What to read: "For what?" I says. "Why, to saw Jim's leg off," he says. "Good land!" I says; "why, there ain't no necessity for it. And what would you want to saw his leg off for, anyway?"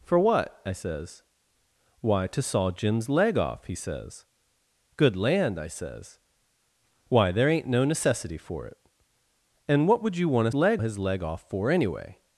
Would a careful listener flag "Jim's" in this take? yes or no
no